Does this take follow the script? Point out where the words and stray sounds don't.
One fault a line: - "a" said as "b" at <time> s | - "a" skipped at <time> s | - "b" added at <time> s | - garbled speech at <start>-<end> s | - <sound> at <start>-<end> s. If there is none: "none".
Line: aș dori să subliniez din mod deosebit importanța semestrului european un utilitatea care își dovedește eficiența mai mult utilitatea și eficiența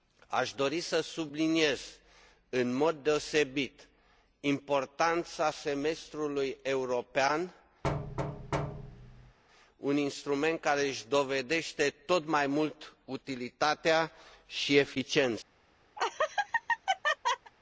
- "din" said as "în" at 2.5 s
- thud at 7.8-9.4 s
- "utilitatea" said as "instrument" at 10.0 s
- "eficiența" said as "tot" at 11.9 s
- laugh at 16.0-17.5 s